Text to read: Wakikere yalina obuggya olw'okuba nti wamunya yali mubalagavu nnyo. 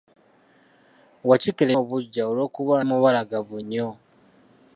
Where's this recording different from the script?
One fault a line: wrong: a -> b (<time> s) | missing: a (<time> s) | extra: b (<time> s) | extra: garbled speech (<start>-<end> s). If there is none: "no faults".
missing: yalina (1.7 s)
missing: nti wamunya yali (2.7 s)